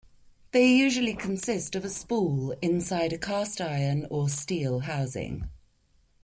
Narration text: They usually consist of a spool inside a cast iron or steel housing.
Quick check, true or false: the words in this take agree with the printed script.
true